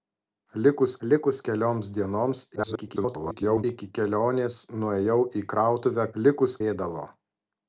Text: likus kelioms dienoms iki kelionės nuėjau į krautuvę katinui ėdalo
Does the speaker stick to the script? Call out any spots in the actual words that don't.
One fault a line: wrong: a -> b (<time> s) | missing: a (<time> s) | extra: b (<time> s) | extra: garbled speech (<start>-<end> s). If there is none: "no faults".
extra: likus (1.1 s)
extra: garbled speech (2.5-3.6 s)
wrong: katinui -> likus (6.2 s)